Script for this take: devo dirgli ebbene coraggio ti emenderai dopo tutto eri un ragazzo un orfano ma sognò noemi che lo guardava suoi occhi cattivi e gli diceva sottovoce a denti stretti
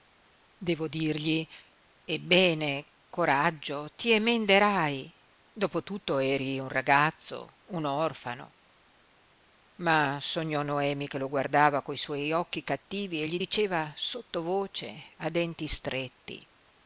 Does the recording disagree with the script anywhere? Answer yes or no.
yes